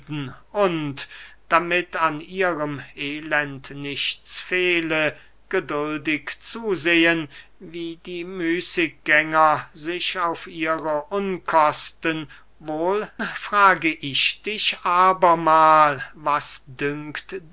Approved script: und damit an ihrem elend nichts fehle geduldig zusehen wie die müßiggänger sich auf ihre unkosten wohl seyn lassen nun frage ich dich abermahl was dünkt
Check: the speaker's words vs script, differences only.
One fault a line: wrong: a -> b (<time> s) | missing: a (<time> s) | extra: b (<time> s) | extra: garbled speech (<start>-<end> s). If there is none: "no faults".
missing: seyn lassen nun (13.1 s)